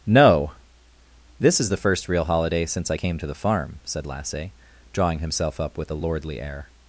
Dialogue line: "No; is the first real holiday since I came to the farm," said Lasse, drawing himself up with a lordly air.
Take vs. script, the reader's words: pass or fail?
fail